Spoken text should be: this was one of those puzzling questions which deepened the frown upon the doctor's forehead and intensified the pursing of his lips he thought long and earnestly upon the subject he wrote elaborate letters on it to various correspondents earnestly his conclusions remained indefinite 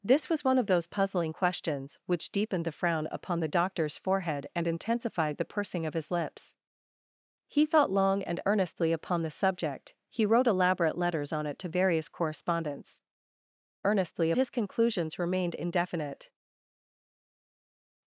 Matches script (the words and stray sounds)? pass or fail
pass